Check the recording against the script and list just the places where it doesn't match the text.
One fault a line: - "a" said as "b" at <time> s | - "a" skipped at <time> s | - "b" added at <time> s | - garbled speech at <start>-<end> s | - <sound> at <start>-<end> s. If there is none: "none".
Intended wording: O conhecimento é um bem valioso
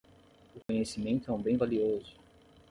- dropout at 0.6-0.7 s